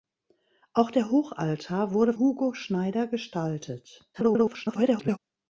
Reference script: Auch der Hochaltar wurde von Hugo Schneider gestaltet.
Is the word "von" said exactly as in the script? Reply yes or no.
no